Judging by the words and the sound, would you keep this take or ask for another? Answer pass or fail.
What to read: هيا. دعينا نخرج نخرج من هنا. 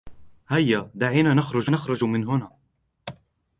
pass